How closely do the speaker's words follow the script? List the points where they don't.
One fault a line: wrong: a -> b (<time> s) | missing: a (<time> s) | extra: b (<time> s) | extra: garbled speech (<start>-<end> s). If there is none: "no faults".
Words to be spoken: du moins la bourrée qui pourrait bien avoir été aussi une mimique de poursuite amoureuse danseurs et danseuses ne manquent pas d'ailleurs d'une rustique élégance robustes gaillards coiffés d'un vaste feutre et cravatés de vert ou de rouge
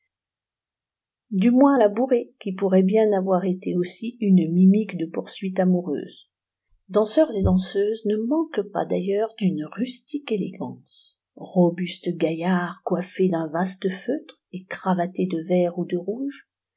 no faults